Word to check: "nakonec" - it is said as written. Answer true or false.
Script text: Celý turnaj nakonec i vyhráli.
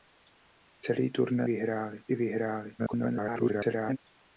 false